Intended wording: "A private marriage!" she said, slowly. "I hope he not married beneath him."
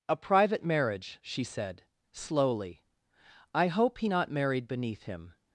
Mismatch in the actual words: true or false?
false